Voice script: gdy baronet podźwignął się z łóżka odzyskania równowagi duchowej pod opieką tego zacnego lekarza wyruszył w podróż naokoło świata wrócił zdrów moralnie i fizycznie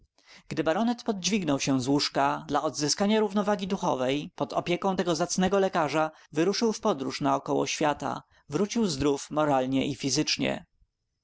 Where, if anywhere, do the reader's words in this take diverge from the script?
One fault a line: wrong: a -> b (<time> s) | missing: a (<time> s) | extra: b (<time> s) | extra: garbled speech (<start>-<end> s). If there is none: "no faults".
extra: dla (2.5 s)